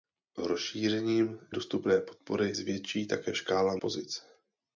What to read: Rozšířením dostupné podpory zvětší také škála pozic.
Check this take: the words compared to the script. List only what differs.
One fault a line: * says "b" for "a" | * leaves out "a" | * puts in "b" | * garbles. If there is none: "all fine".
all fine